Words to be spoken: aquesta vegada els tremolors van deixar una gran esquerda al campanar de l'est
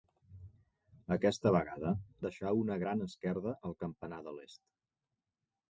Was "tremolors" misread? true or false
true